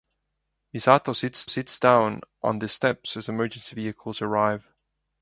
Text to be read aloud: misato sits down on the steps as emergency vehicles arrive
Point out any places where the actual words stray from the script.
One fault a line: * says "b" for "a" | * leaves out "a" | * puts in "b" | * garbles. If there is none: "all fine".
* puts in "sits"